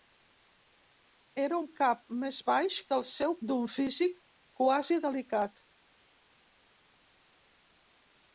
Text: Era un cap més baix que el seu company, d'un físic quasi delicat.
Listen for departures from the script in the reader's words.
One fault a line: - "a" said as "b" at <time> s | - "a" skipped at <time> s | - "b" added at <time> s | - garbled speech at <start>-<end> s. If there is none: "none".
- "company" skipped at 3.4 s